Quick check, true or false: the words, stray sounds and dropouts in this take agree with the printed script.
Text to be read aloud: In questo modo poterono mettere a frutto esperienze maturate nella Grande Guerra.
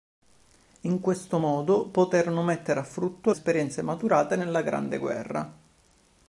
true